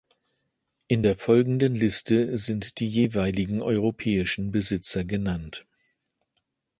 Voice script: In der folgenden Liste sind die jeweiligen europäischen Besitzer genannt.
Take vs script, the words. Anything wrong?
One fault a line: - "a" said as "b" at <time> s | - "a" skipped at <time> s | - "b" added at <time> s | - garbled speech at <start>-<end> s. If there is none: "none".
none